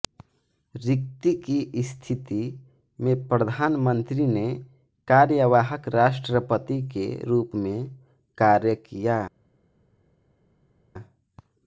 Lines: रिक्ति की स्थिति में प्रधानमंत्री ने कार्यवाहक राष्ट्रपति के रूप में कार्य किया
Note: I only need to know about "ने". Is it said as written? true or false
true